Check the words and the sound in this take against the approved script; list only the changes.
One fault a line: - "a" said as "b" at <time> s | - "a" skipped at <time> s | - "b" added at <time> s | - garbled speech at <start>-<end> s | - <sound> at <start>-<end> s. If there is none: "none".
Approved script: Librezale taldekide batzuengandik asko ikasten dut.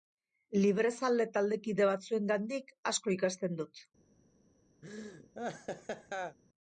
- laugh at 4.8-6.4 s